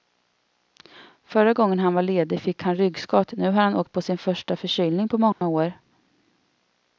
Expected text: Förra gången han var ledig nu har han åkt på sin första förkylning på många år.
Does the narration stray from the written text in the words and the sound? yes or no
yes